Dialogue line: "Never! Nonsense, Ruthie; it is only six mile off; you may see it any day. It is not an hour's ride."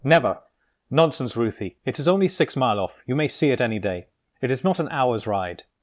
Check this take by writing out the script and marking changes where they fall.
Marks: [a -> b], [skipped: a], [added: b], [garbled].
"Never! Nonsense, Ruthie; it is only six mile off; you may see it any day. It is not an hour's ride."